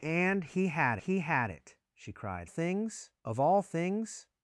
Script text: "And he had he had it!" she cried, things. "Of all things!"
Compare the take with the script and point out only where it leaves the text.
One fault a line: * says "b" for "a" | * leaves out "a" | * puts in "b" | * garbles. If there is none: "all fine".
all fine